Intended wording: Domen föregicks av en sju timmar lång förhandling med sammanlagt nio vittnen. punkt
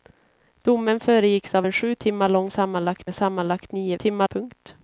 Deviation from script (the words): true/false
true